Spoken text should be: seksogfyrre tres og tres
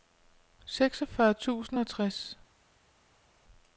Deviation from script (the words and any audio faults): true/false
true